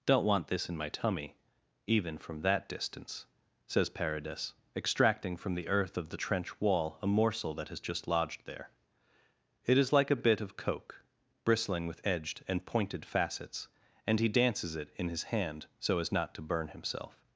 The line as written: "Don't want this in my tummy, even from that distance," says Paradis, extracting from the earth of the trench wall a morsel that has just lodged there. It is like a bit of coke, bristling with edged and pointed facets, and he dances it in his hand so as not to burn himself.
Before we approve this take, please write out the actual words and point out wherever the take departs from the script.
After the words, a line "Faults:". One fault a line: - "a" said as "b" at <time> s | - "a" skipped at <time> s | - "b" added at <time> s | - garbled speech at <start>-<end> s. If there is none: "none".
"Don't want this in my tummy, even from that distance," says Paradis, extracting from the earth of the trench wall a morsel that has just lodged there. It is like a bit of coke, bristling with edged and pointed facets, and he dances it in his hand so as not to burn himself.
Faults:
none